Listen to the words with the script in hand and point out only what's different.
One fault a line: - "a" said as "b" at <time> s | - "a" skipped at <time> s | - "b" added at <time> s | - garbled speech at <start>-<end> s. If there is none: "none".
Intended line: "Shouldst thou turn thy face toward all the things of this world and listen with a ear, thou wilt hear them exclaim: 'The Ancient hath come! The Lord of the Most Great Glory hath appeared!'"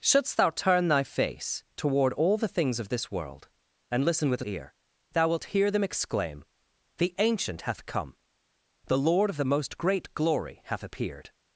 none